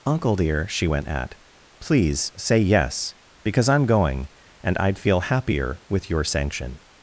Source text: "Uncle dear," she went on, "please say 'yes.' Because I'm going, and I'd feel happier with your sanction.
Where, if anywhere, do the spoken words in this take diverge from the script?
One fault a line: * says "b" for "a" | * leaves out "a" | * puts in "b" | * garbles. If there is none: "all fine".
* says "at" for "on"